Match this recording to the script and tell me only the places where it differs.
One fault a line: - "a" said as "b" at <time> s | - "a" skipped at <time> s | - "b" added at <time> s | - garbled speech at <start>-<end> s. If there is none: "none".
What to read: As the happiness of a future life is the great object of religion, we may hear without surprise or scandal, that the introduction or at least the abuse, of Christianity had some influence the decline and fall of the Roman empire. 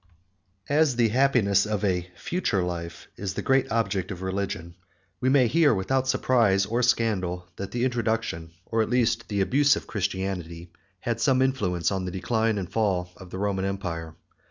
- "on" added at 11.9 s